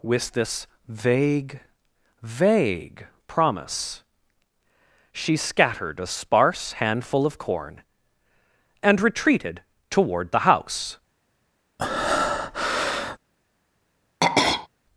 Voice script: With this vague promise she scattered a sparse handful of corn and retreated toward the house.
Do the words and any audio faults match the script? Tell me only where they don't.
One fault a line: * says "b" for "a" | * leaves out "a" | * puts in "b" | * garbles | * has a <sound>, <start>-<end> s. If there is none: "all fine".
* puts in "vague"
* has a breath, 11.8-13.2 s
* has a throat clearing, 14.2-14.7 s